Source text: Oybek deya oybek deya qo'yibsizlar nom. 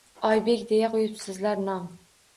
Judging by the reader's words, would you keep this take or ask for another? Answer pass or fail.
fail